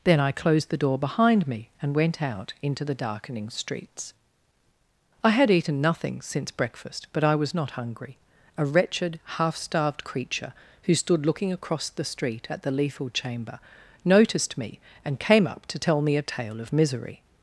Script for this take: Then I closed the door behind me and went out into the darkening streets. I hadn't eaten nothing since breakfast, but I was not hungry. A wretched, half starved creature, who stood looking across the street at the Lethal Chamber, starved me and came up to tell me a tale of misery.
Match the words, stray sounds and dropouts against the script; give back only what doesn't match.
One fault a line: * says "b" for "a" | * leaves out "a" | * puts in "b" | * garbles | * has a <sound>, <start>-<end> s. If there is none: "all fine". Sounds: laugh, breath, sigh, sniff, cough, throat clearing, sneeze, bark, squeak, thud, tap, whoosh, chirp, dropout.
* says "had" for "hadn't"
* says "noticed" for "starved"